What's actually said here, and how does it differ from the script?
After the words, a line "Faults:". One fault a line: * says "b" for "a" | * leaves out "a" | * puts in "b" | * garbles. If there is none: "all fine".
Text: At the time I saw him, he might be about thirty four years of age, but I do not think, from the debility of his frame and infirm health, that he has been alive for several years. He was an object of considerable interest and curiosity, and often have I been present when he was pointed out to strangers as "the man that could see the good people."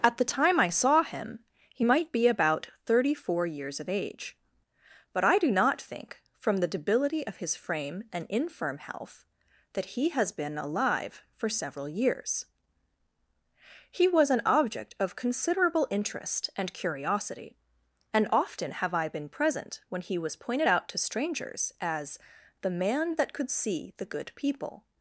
At the time I saw him, he might be about thirty four years of age, but I do not think, from the debility of his frame and infirm health, that he has been alive for several years. He was an object of considerable interest and curiosity, and often have I been present when he was pointed out to strangers as "the man that could see the good people."
Faults:
all fine